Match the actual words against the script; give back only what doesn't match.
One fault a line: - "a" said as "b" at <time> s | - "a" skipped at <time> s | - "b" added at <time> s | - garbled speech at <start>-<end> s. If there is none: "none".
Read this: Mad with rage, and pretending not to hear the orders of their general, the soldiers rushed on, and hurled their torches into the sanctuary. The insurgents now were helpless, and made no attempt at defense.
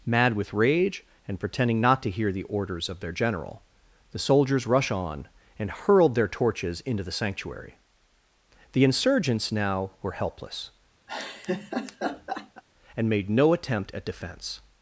- "rushed" said as "rush" at 4.7 s